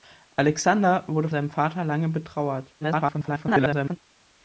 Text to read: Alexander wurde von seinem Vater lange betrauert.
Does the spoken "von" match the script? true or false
false